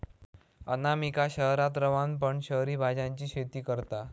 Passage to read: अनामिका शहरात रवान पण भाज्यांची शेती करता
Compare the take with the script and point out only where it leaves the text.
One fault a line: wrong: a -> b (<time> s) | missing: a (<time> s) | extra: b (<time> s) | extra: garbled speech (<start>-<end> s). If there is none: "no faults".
extra: शहरी (2.4 s)